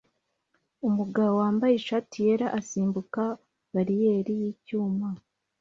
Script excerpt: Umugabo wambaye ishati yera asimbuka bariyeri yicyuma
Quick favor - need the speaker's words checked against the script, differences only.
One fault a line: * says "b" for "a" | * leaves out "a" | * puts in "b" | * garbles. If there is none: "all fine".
all fine